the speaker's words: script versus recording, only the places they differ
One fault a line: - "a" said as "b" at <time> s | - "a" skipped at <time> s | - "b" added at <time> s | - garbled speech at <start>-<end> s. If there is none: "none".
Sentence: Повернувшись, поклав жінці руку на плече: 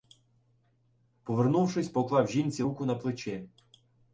none